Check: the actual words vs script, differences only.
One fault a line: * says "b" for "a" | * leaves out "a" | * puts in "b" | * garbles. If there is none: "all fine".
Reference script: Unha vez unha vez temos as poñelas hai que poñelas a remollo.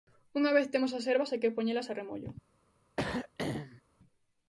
* leaves out "unha vez"
* says "herbas" for "poñelas"